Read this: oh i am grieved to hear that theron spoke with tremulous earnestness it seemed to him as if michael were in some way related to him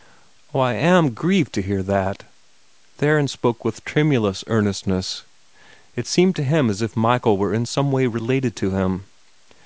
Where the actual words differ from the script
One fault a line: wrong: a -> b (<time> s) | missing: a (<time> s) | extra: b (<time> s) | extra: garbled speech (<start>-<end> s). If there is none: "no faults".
no faults